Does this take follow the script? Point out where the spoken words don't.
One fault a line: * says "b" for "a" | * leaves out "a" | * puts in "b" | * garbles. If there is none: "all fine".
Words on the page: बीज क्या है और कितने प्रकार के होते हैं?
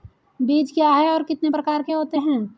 all fine